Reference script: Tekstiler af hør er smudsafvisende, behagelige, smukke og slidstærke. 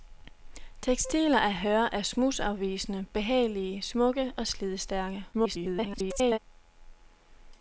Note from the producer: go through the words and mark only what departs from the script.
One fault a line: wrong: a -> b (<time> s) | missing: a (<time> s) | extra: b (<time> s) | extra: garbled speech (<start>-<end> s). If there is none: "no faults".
extra: garbled speech (5.3-6.4 s)